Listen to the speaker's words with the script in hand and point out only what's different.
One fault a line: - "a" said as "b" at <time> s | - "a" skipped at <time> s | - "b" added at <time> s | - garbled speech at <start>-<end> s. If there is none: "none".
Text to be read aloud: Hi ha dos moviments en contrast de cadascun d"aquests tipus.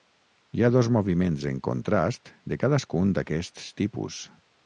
none